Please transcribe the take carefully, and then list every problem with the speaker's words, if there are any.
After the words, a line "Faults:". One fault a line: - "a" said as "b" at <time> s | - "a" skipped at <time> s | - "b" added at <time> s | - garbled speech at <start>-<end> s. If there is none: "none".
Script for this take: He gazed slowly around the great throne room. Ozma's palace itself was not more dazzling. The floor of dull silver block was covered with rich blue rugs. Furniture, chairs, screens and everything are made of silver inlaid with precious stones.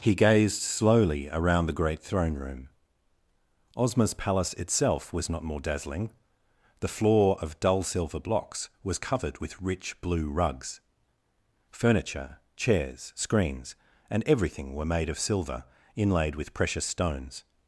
He gazed slowly around the great throne room. Ozma's palace itself was not more dazzling. The floor of dull silver blocks was covered with rich blue rugs. Furniture, chairs, screens and everything were made of silver inlaid with precious stones.
Faults:
- "block" said as "blocks" at 8.2 s
- "are" said as "were" at 14.7 s